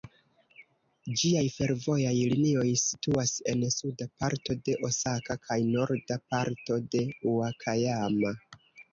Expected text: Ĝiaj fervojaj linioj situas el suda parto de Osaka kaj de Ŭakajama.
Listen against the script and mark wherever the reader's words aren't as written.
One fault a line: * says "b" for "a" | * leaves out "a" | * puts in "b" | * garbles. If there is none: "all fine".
* says "en" for "el"
* puts in "norda parto"